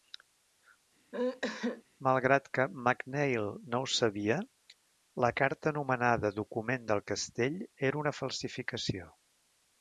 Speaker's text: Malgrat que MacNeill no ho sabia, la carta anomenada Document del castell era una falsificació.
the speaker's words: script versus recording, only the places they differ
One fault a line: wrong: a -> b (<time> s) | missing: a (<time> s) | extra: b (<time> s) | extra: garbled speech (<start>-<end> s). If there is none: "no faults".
no faults